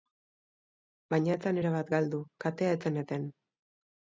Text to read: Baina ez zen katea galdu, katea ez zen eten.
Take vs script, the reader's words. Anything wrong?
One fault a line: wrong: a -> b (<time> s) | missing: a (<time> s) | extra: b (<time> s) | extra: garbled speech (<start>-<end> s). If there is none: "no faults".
wrong: katea -> erabat (1.6 s)